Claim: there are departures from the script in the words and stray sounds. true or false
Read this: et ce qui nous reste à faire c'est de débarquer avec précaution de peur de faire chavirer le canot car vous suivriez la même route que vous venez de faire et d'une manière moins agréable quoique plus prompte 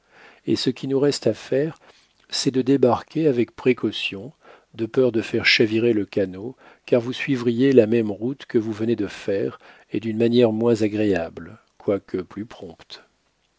false